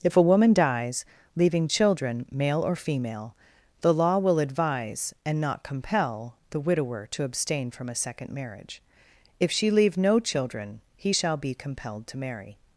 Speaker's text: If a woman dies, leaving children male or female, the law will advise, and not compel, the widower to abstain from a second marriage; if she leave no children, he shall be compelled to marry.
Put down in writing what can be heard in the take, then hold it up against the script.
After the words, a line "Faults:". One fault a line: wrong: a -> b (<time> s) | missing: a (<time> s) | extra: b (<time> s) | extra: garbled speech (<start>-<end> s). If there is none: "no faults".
If a woman dies, leaving children male or female, the law will advise, and not compel, the widower to abstain from a second marriage; if she leave no children, he shall be compelled to marry.
Faults:
no faults